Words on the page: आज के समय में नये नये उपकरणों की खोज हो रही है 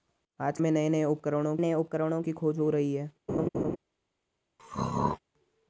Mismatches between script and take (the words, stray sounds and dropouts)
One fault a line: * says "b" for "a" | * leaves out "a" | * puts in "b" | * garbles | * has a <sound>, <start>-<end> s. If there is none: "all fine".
* says "में नये नये उपकरणों" for "के समय में नये"
* has a laugh, 3.3-3.8 s
* has a throat clearing, 4.6-5.2 s